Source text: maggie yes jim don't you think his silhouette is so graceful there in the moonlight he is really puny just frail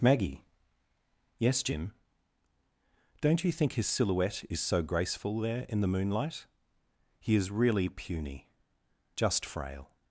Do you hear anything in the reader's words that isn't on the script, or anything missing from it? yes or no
no